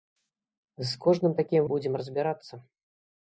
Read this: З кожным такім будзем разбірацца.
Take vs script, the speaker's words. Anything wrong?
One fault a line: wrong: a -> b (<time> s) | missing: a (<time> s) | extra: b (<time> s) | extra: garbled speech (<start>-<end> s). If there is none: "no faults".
no faults